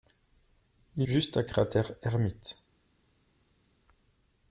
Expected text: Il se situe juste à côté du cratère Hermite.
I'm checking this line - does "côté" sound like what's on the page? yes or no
no